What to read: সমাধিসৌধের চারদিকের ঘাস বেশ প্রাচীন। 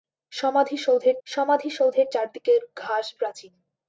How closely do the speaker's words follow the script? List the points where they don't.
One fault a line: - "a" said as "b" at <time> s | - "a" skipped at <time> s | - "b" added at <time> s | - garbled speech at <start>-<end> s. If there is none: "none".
- "সমাধিসৌধের" added at 1.3 s
- "বেশ" skipped at 3.1 s